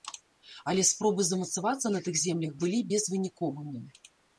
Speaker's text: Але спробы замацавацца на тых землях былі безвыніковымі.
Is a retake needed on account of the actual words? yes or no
no